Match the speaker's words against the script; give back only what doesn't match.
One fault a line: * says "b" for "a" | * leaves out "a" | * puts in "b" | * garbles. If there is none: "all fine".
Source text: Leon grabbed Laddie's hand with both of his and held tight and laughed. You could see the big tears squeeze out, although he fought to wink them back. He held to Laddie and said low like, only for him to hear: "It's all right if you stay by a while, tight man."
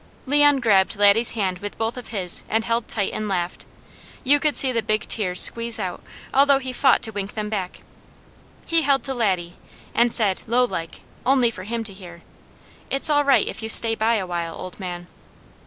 * says "old" for "tight"